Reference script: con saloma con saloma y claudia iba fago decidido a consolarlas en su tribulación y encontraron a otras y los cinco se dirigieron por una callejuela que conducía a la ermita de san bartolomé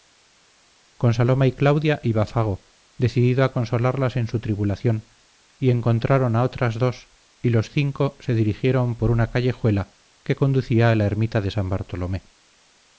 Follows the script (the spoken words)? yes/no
no